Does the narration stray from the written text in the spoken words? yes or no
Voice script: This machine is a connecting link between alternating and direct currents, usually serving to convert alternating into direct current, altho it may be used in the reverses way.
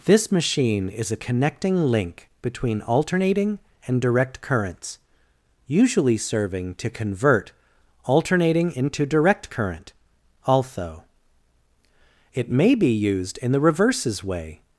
no